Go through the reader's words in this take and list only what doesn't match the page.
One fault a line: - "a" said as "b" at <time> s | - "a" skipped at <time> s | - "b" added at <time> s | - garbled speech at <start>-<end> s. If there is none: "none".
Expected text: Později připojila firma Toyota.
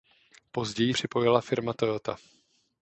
none